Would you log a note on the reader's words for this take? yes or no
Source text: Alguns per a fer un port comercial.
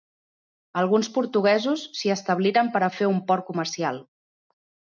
yes